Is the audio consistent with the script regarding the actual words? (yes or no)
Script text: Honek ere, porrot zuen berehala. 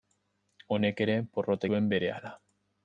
yes